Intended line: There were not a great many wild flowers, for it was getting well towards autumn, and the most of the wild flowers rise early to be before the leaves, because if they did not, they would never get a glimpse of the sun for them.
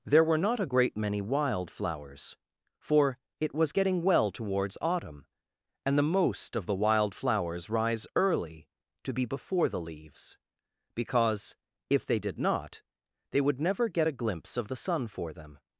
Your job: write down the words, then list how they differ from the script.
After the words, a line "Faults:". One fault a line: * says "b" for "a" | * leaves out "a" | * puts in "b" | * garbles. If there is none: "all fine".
There were not a great many wild flowers, for it was getting well towards autumn, and the most of the wild flowers rise early to be before the leaves, because if they did not, they would never get a glimpse of the sun for them.
Faults:
all fine